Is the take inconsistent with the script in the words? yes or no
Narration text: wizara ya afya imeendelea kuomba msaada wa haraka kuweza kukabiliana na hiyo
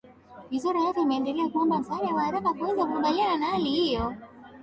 yes